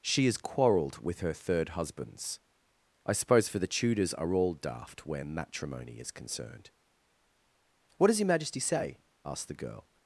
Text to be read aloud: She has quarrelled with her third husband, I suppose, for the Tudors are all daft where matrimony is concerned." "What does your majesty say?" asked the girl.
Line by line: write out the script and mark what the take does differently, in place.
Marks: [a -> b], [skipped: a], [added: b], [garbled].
She has quarrelled with her third [husband, -> husbands] I suppose, for the Tudors are all daft where matrimony is concerned." "What does your majesty say?" asked the girl.